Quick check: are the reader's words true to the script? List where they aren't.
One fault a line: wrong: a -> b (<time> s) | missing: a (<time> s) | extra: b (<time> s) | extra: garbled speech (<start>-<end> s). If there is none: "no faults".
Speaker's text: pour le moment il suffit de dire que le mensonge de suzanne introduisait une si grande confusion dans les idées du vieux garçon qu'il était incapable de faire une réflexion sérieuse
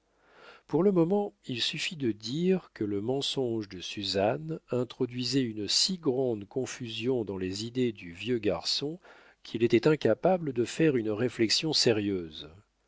no faults